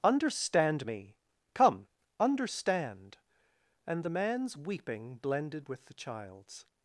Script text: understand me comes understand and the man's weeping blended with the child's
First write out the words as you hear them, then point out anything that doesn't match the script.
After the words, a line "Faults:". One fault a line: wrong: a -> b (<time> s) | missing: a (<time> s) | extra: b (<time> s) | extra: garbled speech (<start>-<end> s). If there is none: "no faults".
understand me come understand and the man's weeping blended with the child's
Faults:
wrong: comes -> come (1.5 s)